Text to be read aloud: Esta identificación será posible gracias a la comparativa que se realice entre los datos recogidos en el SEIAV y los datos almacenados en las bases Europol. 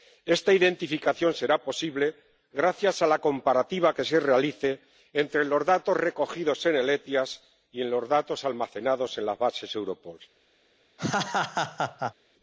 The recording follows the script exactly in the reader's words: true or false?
true